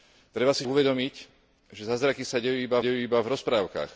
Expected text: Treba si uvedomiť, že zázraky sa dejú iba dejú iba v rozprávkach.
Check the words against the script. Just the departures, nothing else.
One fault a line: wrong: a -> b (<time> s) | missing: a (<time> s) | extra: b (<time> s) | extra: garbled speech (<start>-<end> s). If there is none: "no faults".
no faults